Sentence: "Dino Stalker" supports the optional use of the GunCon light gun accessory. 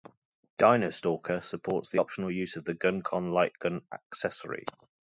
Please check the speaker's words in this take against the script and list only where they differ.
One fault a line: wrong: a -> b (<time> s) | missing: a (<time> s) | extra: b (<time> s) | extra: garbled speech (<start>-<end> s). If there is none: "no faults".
no faults